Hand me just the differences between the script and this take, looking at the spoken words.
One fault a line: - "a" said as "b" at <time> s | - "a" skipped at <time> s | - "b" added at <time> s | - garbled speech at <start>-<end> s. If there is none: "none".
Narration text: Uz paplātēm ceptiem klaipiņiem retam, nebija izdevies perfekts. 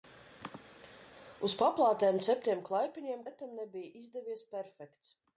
none